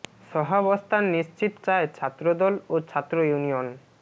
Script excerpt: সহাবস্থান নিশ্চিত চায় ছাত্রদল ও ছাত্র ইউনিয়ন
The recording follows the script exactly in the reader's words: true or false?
true